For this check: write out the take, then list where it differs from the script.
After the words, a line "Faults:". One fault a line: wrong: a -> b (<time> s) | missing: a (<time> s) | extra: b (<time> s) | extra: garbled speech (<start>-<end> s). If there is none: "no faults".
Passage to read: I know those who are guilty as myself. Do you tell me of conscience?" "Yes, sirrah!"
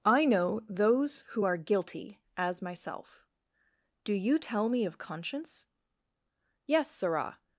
I know those who are guilty as myself. Do you tell me of conscience?" "Yes, sirrah!"
Faults:
no faults